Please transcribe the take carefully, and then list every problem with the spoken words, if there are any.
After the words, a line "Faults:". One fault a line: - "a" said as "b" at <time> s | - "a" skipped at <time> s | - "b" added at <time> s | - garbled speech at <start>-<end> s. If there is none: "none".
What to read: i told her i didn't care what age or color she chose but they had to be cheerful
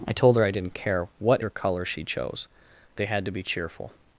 i told her i didn't care what or color she chose they had to be cheerful
Faults:
- "age" skipped at 1.4 s
- "but" skipped at 2.5 s